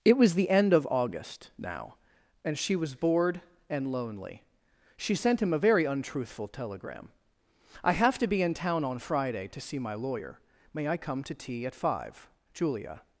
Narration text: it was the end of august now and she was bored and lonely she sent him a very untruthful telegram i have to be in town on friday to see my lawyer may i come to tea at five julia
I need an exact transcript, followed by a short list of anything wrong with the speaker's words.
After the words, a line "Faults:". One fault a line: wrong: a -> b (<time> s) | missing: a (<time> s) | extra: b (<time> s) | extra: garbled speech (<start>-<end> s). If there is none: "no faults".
it was the end of august now and she was bored and lonely she sent him a very untruthful telegram i have to be in town on friday to see my lawyer may i come to tea at five julia
Faults:
no faults